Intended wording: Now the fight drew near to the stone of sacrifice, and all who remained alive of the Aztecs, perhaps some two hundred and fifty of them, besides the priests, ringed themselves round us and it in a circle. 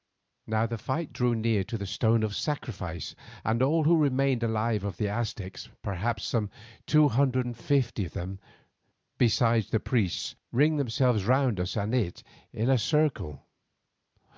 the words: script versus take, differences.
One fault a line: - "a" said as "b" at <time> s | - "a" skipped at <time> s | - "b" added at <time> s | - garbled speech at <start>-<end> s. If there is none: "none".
none